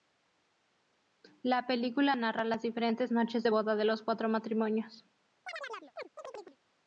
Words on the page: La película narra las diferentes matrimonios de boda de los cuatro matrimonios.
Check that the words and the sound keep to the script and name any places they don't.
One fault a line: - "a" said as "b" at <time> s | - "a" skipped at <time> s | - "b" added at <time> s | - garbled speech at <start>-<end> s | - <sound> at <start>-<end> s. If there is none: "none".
- "matrimonios" said as "noches" at 3.1 s
- chirp at 5.5-6.6 s